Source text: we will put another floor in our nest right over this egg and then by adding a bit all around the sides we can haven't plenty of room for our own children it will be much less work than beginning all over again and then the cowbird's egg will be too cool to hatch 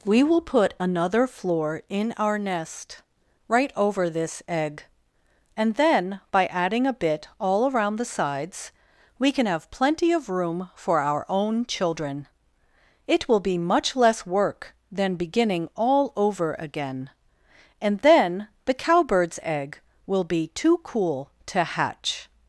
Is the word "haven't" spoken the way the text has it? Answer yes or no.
no